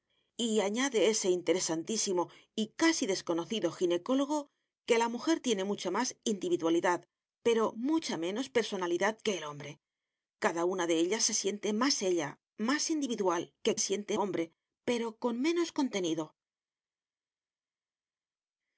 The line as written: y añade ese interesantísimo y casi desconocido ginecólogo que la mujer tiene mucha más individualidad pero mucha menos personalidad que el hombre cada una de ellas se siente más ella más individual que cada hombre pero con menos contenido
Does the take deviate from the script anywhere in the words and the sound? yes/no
yes